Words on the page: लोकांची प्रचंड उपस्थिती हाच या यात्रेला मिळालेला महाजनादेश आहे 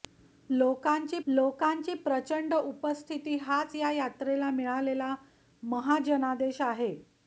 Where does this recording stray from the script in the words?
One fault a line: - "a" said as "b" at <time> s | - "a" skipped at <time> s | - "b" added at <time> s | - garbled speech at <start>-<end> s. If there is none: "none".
- "लोकांची" added at 1.3 s